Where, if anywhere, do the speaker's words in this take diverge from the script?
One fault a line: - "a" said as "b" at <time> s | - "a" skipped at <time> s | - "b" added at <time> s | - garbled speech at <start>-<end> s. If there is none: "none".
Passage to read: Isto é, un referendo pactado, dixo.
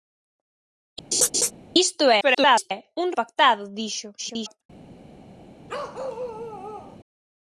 - garbled speech at 2.2-2.7 s
- "referendo" skipped at 3.1 s
- garbled speech at 4.2-4.6 s